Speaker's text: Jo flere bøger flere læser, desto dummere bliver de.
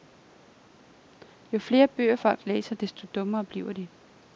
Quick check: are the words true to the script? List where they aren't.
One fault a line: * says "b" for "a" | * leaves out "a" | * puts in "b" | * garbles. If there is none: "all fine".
* says "folk" for "flere"